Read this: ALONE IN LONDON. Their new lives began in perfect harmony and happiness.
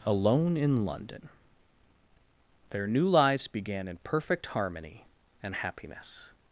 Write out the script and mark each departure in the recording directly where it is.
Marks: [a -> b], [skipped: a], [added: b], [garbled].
ALONE IN LONDON. Their new lives began in perfect harmony and happiness.